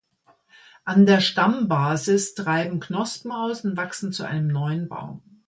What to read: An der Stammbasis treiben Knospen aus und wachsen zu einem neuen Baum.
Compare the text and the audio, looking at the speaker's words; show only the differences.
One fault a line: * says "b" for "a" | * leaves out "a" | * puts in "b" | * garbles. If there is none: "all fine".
all fine